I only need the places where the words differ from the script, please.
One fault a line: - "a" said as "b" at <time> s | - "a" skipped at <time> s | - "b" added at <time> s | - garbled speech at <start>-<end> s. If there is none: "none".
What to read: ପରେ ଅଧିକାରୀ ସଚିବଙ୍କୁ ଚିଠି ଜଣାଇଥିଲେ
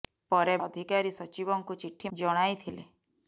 none